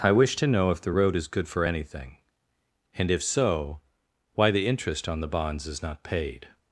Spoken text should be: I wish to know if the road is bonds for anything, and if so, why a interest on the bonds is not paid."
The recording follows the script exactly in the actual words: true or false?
false